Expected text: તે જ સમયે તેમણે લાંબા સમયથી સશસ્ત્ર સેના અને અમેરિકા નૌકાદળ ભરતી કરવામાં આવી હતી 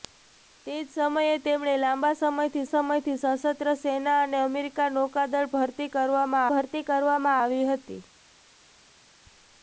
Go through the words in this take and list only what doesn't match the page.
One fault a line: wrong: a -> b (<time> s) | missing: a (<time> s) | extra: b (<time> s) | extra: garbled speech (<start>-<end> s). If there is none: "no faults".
extra: સમયથી (2.7 s)
extra: ભરતી કરવામાં (6.5 s)